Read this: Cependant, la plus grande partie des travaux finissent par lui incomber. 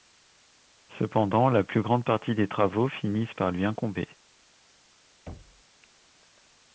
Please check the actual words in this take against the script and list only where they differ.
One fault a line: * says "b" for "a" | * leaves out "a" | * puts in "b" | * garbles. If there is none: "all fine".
all fine